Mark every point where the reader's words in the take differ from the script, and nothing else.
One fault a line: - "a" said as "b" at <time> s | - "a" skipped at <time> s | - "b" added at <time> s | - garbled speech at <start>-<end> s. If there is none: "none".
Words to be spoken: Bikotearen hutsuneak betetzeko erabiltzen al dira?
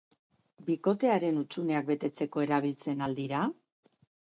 none